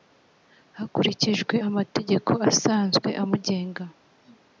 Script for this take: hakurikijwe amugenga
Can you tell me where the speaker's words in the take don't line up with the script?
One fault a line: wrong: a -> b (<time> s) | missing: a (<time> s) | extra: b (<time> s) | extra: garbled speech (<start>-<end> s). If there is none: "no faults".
extra: amategeko asanzwe (1.7 s)